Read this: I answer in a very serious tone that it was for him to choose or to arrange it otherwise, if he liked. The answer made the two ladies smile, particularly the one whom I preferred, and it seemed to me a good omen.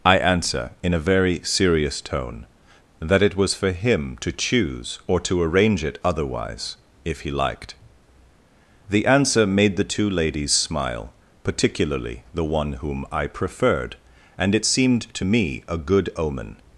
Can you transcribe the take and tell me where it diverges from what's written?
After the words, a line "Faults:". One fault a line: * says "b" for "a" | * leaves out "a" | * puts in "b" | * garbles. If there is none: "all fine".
I answer in a very serious tone that it was for him to choose or to arrange it otherwise, if he liked. The answer made the two ladies smile, particularly the one whom I preferred, and it seemed to me a good omen.
Faults:
all fine